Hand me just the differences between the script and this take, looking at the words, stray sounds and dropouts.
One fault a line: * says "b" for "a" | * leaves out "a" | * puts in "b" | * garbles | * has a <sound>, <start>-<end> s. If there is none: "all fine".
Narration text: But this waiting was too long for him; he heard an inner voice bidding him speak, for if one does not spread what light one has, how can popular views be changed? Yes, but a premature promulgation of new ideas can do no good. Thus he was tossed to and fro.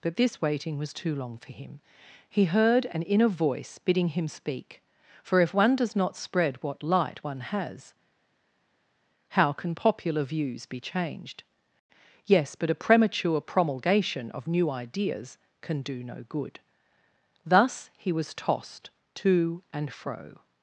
all fine